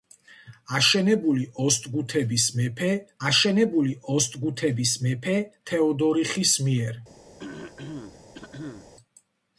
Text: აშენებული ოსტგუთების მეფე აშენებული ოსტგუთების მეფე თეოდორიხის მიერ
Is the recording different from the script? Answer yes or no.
no